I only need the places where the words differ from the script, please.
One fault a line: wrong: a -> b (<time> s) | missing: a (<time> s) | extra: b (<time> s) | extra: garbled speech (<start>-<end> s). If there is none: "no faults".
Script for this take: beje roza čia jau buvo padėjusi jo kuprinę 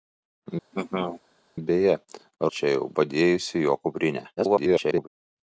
missing: roza (1.9 s)
missing: buvo (2.9 s)
extra: garbled speech (4.4-5.1 s)